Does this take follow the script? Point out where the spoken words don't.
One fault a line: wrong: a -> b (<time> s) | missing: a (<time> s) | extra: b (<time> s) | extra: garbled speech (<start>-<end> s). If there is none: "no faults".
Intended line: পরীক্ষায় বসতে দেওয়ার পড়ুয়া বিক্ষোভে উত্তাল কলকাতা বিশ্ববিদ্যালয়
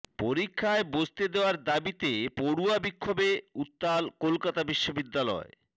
extra: দাবিতে (1.6 s)